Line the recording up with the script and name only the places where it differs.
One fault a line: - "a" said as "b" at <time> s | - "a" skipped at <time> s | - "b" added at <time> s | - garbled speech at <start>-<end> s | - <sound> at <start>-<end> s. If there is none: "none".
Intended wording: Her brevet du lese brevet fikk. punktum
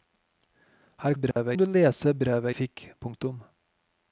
- dropout at 1.3-1.4 s